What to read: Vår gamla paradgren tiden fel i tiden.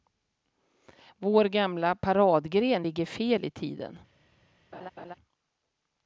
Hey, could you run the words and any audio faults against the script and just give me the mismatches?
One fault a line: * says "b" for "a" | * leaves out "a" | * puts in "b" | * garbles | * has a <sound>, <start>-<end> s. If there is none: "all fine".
* says "ligger" for "tiden"
* has a laugh, 4.7-5.1 s